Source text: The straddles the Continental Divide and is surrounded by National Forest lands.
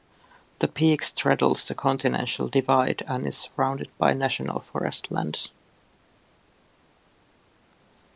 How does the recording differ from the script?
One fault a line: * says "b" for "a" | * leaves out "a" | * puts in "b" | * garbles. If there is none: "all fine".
* puts in "peak"